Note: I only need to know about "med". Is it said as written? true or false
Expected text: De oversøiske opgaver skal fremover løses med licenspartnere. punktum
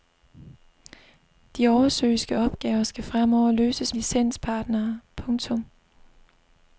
false